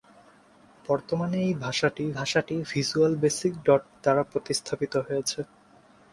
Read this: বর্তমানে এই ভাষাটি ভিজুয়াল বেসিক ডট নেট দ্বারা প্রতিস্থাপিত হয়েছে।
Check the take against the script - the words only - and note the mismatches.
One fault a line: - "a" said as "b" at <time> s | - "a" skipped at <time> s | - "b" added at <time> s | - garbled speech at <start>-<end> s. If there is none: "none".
- "ভাষাটি" added at 2.2 s
- "নেট" skipped at 3.8 s